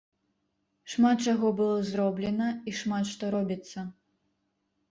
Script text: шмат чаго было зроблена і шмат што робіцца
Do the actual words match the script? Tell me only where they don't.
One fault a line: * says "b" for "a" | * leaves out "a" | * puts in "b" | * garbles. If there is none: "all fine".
all fine